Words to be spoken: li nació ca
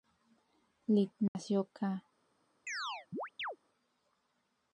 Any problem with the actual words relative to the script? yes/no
no